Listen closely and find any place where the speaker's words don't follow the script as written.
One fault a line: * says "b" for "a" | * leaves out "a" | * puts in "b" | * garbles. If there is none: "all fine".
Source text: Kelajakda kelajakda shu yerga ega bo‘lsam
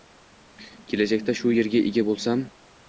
* leaves out "kelajakda"